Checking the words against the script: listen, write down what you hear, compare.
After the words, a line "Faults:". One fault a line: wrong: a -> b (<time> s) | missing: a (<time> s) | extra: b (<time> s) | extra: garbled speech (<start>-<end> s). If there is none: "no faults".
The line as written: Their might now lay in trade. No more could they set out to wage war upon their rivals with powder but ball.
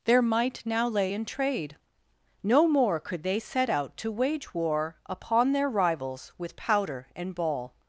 Their might now lay in trade. No more could they set out to wage war upon their rivals with powder and ball.
Faults:
wrong: but -> and (7.2 s)